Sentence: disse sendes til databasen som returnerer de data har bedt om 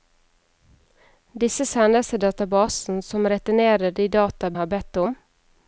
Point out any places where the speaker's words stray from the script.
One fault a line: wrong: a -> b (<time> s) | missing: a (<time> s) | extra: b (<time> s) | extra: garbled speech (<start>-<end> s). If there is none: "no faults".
no faults